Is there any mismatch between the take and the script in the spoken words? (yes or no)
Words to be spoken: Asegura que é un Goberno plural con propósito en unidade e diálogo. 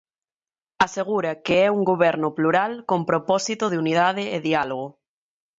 yes